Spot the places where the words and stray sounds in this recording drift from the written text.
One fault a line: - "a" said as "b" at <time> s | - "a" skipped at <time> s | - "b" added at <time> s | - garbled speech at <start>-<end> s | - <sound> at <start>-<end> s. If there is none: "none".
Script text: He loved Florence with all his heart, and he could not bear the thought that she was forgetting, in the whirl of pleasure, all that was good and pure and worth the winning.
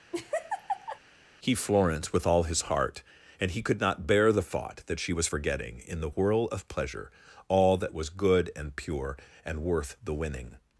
- laugh at 0.1-1.0 s
- "loved" skipped at 1.6 s